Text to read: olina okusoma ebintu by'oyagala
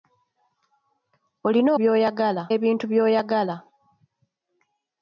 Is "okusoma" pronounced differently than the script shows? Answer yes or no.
yes